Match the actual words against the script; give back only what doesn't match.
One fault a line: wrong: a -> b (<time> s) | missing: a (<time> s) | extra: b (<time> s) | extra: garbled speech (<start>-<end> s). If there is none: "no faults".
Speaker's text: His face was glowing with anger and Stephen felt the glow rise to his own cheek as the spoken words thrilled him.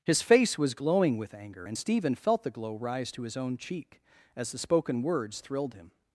no faults